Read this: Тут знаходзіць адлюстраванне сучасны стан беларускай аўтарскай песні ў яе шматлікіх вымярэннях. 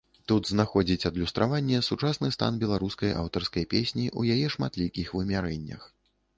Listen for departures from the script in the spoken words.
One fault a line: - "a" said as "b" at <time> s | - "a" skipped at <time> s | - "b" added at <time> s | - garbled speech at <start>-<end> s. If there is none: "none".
none